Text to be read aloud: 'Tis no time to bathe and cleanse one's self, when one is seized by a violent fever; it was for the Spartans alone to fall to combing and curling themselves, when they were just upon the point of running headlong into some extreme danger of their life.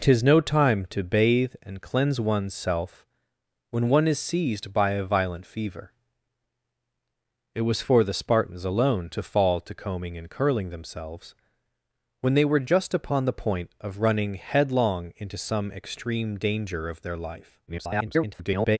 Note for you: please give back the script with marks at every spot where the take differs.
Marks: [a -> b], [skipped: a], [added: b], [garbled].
'Tis no time to bathe and cleanse one's self, when one is seized by a violent fever; it was for the Spartans alone to fall to combing and curling themselves, when they were just upon the point of running headlong into some extreme danger of their life. [garbled]